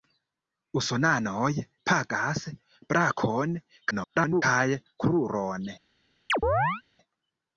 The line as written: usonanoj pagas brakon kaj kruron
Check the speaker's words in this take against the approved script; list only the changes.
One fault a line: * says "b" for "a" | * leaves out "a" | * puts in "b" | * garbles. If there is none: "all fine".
* garbles